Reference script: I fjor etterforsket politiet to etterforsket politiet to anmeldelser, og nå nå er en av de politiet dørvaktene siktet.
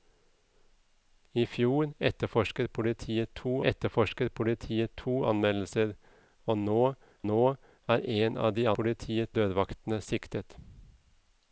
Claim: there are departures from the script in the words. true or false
false